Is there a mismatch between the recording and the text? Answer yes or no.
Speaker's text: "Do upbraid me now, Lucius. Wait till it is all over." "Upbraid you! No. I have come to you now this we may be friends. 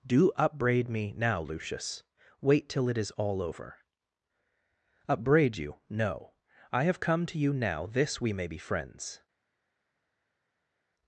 no